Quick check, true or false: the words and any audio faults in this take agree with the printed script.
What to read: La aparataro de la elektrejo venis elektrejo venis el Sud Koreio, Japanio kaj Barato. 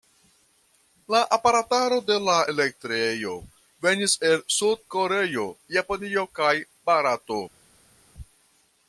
false